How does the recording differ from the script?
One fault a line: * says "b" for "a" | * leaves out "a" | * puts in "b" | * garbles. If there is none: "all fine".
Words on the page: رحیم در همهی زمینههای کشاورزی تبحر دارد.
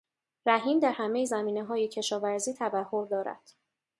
all fine